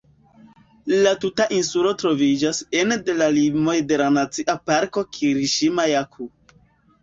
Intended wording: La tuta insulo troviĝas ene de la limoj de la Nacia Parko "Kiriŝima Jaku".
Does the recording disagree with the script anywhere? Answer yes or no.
no